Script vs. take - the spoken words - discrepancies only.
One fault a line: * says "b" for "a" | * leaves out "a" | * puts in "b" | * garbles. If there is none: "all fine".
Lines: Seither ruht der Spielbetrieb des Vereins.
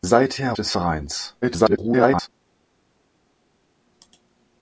* leaves out "ruht der Spielbetrieb"
* garbles